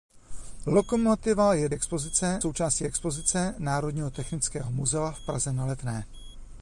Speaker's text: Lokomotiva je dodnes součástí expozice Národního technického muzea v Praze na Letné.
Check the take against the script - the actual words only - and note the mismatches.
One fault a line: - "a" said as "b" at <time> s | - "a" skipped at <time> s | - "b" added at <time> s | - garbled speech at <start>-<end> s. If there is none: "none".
- "dodnes" said as "expozice" at 1.7 s